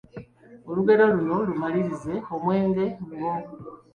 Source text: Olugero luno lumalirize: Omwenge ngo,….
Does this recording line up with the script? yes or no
yes